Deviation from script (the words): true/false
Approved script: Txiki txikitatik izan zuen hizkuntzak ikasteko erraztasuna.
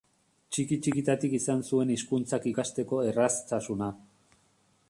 false